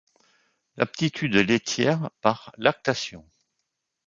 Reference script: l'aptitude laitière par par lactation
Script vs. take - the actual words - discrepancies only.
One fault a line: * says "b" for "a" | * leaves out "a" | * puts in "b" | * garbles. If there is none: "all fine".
* leaves out "par"